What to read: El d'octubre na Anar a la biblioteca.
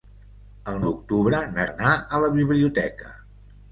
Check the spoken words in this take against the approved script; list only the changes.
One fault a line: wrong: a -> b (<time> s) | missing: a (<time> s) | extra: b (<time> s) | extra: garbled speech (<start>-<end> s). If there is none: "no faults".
no faults